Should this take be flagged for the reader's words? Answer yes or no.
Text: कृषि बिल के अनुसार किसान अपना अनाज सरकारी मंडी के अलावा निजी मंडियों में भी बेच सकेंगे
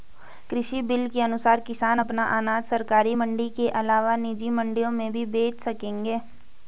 no